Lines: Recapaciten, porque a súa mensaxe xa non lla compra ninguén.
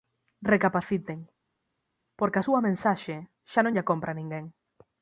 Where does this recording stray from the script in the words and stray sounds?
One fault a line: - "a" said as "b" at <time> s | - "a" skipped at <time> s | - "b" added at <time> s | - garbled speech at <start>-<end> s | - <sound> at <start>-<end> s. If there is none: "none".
none